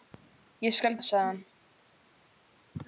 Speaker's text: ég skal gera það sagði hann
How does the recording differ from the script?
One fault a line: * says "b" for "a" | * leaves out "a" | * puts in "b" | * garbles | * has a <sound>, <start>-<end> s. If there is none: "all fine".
* leaves out "gera"